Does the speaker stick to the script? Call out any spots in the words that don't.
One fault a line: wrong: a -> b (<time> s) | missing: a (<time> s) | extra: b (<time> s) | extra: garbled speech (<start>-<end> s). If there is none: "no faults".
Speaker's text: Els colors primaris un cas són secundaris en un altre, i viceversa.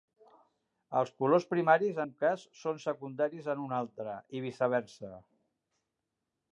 no faults